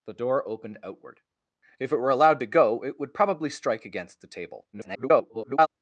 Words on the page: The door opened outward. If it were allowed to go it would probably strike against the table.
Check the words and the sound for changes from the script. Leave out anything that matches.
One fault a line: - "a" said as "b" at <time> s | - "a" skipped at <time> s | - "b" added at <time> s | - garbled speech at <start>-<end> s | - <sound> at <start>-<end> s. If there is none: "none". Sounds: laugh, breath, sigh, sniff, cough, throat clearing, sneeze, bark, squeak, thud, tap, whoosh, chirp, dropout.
- garbled speech at 4.7-5.7 s